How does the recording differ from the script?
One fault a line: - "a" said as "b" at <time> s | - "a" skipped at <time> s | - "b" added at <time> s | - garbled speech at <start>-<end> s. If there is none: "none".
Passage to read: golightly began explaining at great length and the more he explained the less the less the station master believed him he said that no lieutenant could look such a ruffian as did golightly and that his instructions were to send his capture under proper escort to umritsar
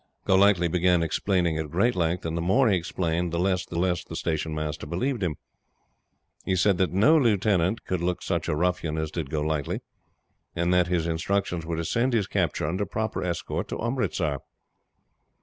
none